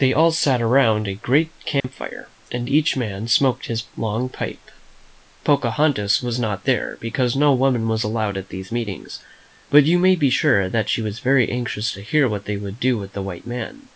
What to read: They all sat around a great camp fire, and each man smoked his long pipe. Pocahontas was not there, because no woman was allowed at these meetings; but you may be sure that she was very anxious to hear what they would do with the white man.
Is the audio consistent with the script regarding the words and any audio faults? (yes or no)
no